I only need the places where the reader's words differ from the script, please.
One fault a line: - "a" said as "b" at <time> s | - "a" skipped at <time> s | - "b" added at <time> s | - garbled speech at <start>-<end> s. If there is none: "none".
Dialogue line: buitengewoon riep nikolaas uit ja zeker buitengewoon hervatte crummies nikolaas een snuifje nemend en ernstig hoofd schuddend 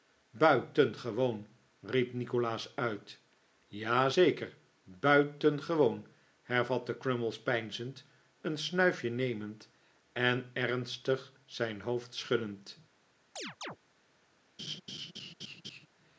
- "nikolaas" said as "peinzend" at 7.4 s
- "zijn" added at 11.4 s